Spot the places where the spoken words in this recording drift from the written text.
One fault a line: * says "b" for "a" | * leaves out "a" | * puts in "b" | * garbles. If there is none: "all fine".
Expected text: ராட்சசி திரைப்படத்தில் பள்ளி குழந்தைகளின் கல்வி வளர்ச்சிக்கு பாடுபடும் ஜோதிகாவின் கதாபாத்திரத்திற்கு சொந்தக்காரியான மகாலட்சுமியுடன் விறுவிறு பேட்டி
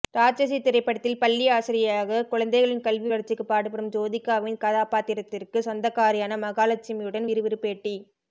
* puts in "ஆசிரியையாக"